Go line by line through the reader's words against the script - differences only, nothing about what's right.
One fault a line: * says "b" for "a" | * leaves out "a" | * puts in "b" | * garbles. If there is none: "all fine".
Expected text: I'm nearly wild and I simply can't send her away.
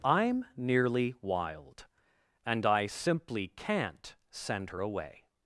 all fine